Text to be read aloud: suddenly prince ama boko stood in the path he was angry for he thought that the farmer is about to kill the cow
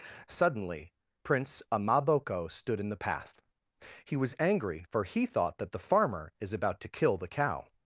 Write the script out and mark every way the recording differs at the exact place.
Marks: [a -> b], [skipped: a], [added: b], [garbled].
suddenly prince ama boko stood in the path he was angry for he thought that the farmer is about to kill the cow